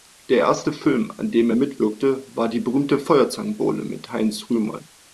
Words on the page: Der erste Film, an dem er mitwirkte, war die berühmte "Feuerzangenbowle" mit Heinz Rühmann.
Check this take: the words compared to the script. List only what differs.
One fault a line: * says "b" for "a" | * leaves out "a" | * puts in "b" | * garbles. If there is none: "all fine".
all fine